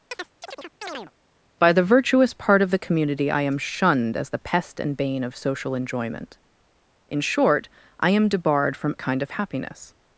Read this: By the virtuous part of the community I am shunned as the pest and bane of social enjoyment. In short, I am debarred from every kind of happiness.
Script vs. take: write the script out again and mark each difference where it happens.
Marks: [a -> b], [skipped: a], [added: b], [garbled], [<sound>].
[chirp] By the virtuous part of the community I am shunned as the pest and bane of social enjoyment. In short, I am debarred from [skipped: every] kind of happiness.